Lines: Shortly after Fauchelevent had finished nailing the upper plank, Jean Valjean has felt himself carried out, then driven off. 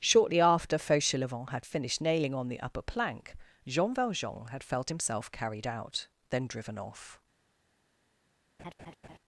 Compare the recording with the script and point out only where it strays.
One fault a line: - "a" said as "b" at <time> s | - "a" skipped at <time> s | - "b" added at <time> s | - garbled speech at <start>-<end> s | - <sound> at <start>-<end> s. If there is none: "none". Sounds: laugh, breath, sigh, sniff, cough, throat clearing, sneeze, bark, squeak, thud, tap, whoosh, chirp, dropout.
- "on" added at 2.3 s
- "has" said as "had" at 4.5 s
- laugh at 8.6-9.2 s